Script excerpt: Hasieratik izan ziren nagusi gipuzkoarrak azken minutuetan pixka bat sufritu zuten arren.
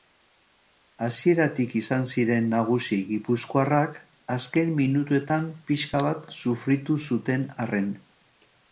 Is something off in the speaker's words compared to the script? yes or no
no